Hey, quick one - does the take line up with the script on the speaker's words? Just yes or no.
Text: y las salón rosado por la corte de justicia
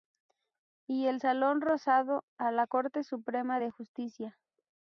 no